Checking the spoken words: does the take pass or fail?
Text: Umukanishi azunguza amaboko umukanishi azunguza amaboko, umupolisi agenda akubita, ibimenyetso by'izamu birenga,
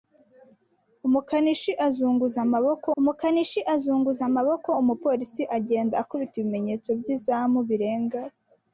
pass